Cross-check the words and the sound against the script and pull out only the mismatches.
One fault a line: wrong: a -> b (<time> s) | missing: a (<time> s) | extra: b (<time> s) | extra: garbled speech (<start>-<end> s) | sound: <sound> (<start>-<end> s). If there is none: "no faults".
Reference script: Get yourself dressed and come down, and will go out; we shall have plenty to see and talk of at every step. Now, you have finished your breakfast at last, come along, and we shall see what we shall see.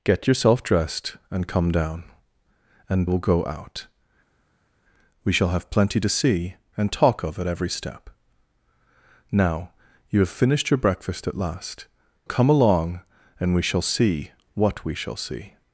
no faults